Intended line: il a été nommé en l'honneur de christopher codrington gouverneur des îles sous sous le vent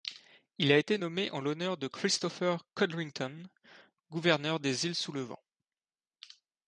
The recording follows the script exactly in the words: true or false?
false